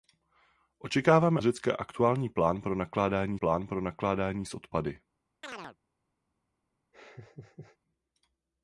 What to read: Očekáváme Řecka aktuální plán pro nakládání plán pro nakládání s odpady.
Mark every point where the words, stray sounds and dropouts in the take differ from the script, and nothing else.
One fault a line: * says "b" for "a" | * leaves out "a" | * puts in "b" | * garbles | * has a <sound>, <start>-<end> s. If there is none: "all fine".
* has a chirp, 5.4-5.8 s
* has a laugh, 6.9-7.8 s